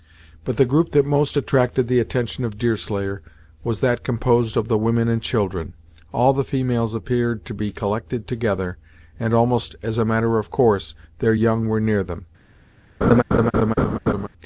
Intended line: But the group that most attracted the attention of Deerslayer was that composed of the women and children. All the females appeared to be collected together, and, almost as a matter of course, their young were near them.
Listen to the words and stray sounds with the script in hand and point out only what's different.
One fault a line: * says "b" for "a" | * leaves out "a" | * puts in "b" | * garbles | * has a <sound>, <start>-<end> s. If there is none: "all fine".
* has a laugh, 13.0-14.3 s